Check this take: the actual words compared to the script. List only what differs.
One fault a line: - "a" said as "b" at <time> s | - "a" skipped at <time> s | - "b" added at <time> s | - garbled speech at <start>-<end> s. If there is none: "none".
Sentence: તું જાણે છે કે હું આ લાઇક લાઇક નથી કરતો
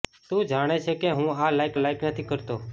none